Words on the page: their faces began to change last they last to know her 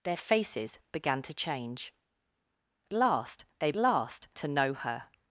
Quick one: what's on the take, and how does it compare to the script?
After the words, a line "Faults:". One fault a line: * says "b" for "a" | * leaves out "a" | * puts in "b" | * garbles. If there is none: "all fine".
their faces began to change last they last to know her
Faults:
all fine